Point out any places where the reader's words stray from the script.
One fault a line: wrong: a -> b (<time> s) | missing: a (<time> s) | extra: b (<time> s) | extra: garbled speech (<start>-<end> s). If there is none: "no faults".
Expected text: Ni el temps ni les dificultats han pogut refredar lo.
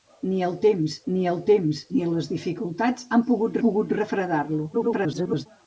extra: el temps ni (1.3 s)
extra: pogut (3.7 s)
extra: garbled speech (4.7-5.5 s)